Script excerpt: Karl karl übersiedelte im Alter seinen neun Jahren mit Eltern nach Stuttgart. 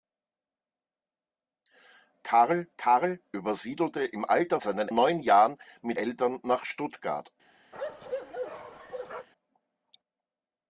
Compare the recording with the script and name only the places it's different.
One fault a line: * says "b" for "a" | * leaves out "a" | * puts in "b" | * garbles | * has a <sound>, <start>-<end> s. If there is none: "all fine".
* has a bark, 7.7-9.3 s